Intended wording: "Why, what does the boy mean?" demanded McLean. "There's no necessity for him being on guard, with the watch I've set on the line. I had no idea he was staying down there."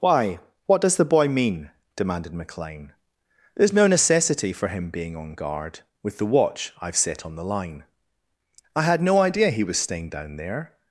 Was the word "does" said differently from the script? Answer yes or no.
no